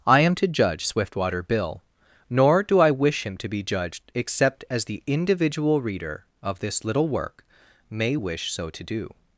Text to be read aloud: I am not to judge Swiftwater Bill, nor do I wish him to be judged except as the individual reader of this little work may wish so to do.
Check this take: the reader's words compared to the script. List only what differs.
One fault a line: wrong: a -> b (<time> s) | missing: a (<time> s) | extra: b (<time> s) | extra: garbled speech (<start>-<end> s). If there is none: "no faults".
missing: not (0.3 s)